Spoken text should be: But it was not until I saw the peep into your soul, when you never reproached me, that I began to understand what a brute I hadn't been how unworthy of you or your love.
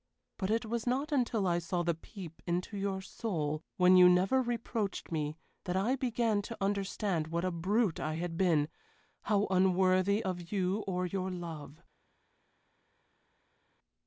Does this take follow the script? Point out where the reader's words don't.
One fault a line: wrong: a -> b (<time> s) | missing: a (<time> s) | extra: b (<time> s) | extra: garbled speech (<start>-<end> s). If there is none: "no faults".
wrong: hadn't -> had (8.1 s)